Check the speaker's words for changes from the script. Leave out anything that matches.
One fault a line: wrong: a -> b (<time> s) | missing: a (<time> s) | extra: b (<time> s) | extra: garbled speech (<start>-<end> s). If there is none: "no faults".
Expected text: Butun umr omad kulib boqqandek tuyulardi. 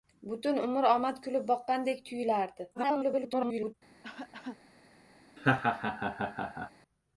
extra: garbled speech (2.7-3.7 s)